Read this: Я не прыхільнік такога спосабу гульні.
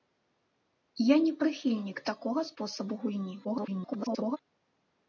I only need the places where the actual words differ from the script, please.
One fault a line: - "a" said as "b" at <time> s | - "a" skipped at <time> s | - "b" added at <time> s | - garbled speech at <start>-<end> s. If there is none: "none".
- garbled speech at 3.4-4.4 s